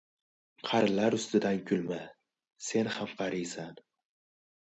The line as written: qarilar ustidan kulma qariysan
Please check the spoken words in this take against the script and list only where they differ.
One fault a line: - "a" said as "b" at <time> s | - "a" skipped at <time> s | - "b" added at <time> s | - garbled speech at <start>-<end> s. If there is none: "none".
- "sen ham" added at 2.7 s